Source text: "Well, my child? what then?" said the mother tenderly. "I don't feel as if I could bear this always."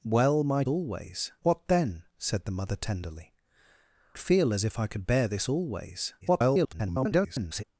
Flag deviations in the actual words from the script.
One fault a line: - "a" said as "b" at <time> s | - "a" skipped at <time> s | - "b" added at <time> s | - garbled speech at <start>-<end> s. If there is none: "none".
- "child" said as "always" at 0.7 s
- "I don't" skipped at 3.3 s
- garbled speech at 6.2-7.6 s